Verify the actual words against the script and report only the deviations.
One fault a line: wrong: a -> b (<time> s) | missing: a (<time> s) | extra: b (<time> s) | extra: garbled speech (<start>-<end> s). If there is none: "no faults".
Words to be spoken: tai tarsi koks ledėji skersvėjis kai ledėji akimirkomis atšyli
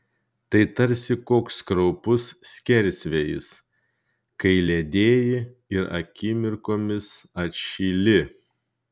wrong: ledėji -> kraupus (1.7 s)
extra: ir (5.8 s)